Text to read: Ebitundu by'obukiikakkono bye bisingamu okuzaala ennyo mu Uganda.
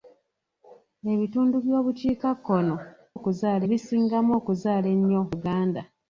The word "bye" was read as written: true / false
false